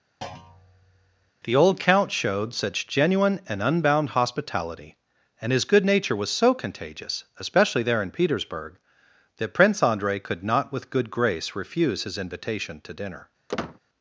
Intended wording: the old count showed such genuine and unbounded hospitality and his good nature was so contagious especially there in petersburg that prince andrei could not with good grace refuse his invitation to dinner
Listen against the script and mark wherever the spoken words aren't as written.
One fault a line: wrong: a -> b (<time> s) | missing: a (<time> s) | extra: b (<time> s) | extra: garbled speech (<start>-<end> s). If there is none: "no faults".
wrong: unbounded -> unbound (3.6 s)